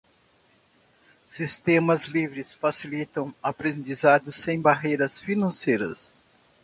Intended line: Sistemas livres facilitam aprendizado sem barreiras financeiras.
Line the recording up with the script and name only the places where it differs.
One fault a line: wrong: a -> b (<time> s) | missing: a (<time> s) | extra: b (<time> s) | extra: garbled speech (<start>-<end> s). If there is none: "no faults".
no faults